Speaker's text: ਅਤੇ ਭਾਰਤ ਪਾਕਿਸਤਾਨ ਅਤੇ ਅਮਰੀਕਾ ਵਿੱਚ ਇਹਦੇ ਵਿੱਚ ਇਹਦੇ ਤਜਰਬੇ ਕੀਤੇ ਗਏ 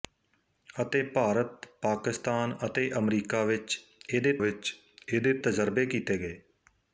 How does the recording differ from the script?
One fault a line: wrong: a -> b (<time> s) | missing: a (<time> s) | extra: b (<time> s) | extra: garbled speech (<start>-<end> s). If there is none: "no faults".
no faults